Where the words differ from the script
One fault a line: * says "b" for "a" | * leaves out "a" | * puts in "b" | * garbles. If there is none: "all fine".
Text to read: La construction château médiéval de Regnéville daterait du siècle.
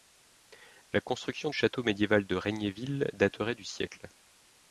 all fine